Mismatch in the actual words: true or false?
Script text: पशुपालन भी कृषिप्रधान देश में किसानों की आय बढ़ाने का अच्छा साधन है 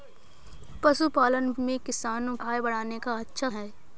true